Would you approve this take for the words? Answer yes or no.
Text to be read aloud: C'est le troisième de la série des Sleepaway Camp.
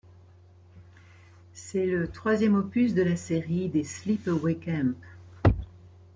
no